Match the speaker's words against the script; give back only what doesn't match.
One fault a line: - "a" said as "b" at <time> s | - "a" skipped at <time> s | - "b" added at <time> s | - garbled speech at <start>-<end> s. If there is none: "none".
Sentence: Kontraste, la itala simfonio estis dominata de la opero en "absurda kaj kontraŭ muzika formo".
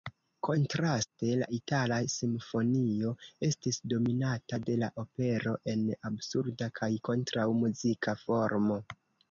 none